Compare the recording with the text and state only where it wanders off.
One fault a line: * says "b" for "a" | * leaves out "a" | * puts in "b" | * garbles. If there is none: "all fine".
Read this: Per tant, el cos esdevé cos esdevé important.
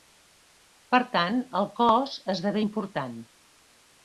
* leaves out "cos esdevé"